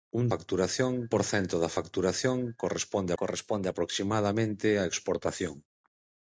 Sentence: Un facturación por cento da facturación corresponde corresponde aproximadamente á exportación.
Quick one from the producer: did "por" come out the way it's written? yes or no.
yes